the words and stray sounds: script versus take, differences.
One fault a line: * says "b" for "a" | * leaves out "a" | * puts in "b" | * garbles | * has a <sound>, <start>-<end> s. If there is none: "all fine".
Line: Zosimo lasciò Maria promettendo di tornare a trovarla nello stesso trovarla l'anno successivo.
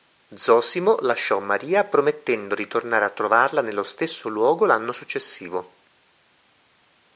* says "luogo" for "trovarla"